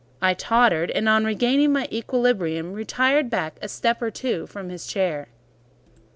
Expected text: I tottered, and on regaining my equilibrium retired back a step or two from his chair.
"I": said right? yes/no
yes